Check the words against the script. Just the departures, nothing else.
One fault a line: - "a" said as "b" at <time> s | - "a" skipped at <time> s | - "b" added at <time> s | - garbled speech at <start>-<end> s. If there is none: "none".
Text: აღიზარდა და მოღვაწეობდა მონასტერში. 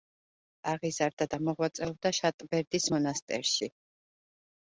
- "შატბერდის" added at 2.2 s